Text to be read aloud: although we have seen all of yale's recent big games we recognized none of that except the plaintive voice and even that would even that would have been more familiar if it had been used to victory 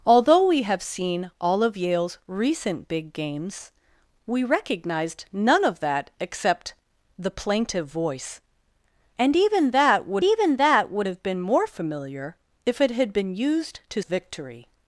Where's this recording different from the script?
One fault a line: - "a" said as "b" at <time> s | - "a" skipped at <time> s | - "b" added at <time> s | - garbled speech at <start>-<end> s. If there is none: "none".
none